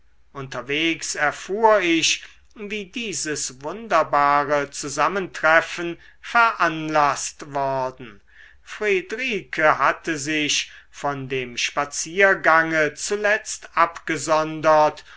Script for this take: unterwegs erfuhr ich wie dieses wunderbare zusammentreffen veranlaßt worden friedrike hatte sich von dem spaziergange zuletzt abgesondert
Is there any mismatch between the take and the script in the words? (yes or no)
no